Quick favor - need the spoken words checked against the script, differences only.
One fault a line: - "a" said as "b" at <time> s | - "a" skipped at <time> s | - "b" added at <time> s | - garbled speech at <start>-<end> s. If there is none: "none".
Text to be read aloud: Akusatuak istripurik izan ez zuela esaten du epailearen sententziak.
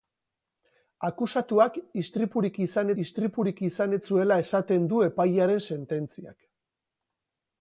- "istripurik izan" added at 3.0 s